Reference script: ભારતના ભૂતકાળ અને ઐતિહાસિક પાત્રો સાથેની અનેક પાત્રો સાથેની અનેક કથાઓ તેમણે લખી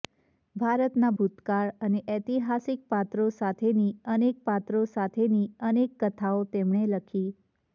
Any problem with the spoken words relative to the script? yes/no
no